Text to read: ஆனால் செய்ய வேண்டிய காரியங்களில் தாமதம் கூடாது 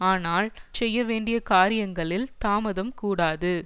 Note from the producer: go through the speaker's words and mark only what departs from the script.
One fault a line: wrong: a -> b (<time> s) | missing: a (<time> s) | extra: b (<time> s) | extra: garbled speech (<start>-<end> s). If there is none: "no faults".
no faults